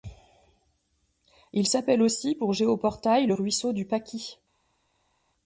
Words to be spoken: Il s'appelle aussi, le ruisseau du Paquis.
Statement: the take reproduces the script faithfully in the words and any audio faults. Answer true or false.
false